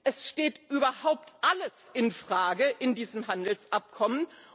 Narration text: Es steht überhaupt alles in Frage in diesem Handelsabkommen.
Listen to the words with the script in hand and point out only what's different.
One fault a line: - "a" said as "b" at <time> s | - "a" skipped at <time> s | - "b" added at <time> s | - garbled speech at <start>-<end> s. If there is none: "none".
none